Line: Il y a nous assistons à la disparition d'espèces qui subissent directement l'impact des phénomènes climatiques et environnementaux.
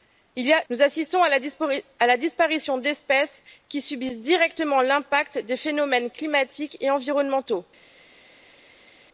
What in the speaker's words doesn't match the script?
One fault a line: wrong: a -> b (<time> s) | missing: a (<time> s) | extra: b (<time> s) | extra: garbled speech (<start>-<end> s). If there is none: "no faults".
no faults